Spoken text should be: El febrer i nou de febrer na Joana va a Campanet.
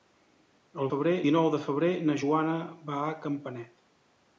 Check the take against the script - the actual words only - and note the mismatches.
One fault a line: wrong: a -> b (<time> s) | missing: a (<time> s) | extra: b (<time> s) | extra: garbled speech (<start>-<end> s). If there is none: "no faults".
no faults